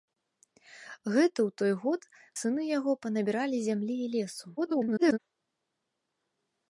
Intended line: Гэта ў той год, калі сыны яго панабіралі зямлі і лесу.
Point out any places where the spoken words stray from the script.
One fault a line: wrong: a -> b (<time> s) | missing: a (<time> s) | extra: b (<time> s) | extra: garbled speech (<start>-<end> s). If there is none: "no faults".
missing: калі (2.0 s)
extra: garbled speech (4.6-5.2 s)